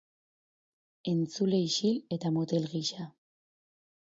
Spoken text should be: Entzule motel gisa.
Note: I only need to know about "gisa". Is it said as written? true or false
true